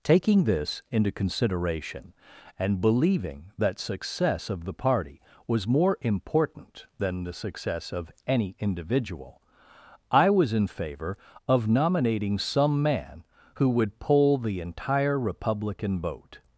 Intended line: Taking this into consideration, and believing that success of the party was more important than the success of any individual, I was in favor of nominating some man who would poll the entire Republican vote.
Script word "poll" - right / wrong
right